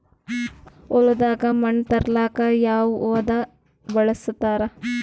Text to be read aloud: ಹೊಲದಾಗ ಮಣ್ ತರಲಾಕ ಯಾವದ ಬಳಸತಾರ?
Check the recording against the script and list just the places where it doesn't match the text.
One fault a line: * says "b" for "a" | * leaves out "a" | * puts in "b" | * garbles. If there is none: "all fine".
all fine